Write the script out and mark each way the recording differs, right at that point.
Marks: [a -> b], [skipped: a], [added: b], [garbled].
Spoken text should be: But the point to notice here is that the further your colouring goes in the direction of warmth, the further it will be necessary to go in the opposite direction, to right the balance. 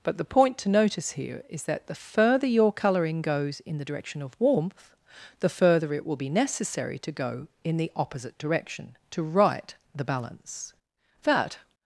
But the point to notice here is that the further your colouring goes in the direction of warmth, the further it will be necessary to go in the opposite direction, to right the balance. [added: That]